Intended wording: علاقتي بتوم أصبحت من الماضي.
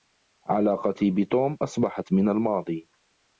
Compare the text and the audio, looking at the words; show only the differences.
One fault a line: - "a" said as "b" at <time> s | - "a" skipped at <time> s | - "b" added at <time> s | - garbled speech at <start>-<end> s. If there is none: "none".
none